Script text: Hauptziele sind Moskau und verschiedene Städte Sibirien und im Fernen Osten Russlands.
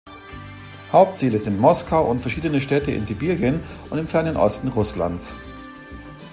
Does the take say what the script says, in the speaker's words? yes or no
no